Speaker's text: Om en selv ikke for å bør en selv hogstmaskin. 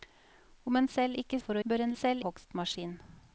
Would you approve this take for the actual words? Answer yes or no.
yes